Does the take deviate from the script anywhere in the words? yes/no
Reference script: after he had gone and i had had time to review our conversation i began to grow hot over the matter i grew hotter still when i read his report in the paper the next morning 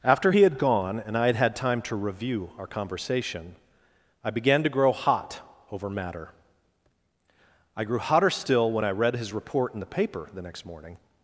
yes